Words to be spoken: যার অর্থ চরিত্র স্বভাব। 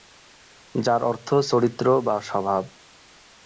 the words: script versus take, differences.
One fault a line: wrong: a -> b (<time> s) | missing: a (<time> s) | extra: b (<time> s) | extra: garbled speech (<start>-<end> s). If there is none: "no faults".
extra: বা (2.0 s)